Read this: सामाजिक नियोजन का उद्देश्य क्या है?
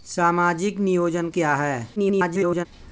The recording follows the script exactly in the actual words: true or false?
false